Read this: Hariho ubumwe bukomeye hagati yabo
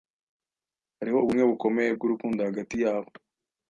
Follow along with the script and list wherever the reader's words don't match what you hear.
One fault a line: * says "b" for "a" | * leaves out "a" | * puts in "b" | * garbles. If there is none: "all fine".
* puts in "bwurukundo"